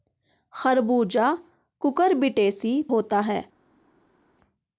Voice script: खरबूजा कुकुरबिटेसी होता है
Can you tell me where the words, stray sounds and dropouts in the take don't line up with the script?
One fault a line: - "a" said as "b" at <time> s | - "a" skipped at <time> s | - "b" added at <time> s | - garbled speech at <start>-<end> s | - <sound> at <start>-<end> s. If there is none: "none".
none